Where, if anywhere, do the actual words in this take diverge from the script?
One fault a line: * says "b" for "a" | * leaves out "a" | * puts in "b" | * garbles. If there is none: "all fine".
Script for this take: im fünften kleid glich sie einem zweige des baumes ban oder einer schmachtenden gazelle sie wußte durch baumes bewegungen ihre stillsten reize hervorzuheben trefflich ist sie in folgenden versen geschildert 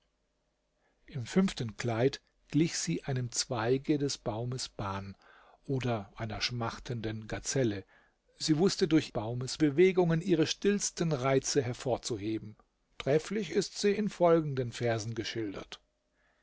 all fine